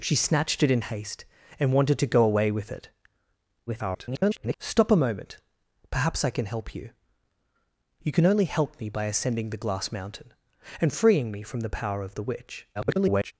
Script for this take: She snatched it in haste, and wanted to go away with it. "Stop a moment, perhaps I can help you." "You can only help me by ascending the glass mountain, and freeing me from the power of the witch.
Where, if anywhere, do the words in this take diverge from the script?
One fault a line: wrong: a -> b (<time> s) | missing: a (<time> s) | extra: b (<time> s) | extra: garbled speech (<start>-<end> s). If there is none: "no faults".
extra: garbled speech (3.7-4.6 s)
extra: garbled speech (12.7-13.3 s)